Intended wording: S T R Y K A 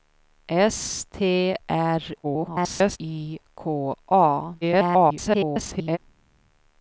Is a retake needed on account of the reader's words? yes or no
yes